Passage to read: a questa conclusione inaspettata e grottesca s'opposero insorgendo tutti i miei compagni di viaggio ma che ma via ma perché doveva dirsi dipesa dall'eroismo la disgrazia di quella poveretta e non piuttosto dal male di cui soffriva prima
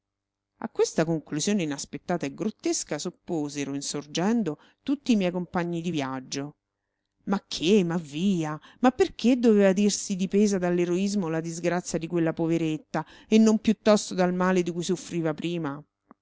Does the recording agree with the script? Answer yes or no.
yes